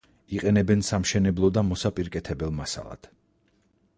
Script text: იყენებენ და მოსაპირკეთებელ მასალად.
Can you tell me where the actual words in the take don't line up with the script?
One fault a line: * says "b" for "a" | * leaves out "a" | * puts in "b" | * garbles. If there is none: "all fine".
* puts in "სამშენებლო"